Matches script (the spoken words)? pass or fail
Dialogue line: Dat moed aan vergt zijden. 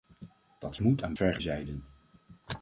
pass